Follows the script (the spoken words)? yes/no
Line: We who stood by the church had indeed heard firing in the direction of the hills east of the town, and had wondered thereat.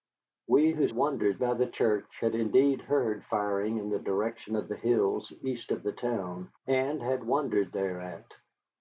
no